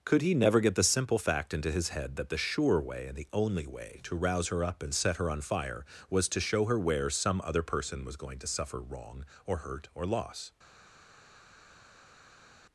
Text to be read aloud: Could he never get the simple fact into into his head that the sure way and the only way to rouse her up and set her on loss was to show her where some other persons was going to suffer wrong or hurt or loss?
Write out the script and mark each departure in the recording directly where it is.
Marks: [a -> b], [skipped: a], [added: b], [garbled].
Could he never get the simple fact into [skipped: into] his head that the sure way and the only way to rouse her up and set her on [loss -> fire] was to show her where some other [persons -> person] was going to suffer wrong or hurt or loss?